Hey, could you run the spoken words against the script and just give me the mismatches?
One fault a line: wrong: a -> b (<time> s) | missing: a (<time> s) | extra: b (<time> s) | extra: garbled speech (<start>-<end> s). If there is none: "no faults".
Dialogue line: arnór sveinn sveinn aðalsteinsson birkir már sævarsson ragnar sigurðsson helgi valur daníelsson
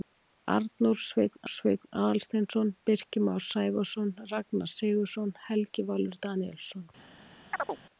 no faults